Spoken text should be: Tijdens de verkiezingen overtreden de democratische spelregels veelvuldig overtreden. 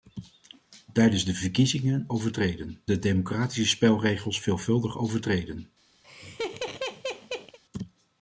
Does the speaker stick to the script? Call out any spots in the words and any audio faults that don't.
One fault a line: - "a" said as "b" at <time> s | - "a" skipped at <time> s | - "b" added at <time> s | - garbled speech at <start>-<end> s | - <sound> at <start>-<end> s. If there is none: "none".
- laugh at 6.0-7.6 s